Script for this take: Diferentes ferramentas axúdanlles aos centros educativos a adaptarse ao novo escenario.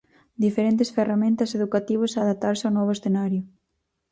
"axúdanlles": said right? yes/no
no